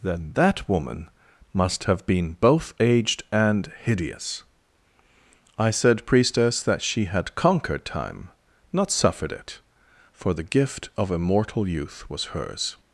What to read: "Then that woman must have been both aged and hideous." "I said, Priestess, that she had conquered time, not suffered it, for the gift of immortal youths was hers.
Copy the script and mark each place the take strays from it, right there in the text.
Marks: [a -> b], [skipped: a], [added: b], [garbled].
"Then that woman must have been both aged and hideous." "I said, Priestess, that she had conquered time, not suffered it, for the gift of immortal [youths -> youth] was hers.